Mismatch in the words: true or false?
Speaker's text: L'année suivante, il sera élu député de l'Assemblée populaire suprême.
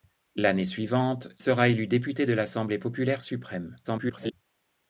true